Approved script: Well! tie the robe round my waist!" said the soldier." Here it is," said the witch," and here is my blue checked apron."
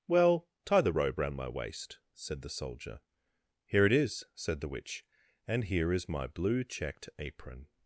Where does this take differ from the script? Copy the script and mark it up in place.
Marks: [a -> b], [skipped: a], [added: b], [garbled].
Well! tie the robe round my waist!" said the soldier." Here it is," said the witch," and here is my blue checked apron."